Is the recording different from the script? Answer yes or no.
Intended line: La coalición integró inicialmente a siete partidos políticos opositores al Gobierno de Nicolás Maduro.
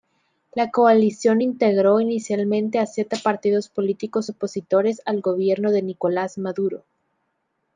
no